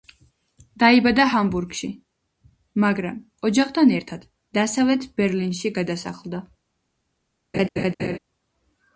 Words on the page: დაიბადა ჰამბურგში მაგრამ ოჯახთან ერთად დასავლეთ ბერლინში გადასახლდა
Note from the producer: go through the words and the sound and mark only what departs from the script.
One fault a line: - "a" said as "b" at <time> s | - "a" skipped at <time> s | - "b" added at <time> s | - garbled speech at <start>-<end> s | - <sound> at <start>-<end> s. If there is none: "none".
- laugh at 7.5-8.2 s